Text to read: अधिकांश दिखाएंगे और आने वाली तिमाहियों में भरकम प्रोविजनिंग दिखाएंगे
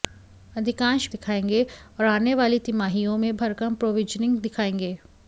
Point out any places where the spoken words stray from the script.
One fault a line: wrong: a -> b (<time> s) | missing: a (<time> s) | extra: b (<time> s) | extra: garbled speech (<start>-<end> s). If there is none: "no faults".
no faults